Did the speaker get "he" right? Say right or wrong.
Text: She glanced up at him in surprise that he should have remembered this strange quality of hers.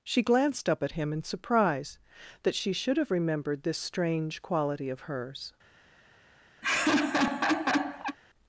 wrong